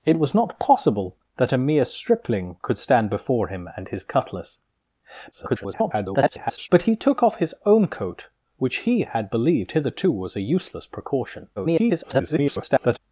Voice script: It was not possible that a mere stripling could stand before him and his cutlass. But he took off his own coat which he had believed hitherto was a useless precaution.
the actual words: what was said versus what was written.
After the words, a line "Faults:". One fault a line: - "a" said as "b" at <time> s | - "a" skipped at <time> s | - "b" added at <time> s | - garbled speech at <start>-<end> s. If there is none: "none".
It was not possible that a mere stripling could stand before him and his cutlass. [garbled] But he took off his own coat which he had believed hitherto was a useless precaution. [garbled]
Faults:
- garbled speech at 5.3-6.7 s
- garbled speech at 11.6-13.0 s